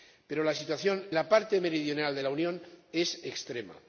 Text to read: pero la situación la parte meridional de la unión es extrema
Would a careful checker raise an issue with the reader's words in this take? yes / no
no